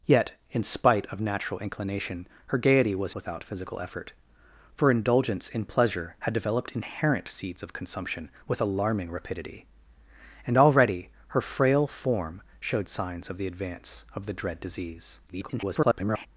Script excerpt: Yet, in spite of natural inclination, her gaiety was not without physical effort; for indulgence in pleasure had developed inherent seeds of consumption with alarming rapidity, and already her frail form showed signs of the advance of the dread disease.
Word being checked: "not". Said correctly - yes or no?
no